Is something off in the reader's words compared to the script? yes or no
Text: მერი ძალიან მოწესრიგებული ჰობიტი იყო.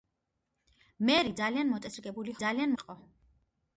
yes